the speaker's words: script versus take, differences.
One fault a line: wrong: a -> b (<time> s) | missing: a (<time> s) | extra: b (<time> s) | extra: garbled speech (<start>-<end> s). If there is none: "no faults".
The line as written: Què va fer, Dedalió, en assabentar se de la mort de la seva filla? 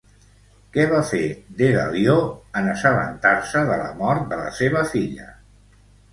no faults